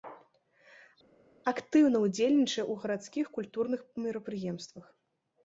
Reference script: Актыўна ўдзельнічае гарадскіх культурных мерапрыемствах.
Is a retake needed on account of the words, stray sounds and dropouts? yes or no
yes